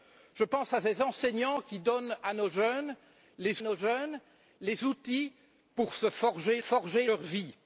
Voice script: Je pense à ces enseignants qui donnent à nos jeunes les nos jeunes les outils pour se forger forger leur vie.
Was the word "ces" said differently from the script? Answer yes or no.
no